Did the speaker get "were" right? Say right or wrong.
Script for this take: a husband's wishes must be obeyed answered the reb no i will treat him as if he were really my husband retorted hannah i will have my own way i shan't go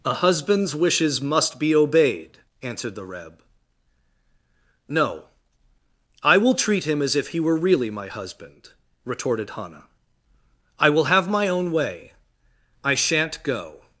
right